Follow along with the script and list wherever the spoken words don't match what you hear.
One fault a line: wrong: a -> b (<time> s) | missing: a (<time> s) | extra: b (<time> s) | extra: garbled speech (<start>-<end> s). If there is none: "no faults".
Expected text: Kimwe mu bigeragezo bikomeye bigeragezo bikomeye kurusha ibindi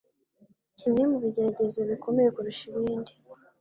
missing: bigeragezo bikomeye (2.3 s)